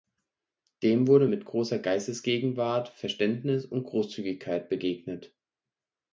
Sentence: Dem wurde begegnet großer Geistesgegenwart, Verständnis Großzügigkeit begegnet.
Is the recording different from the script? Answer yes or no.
yes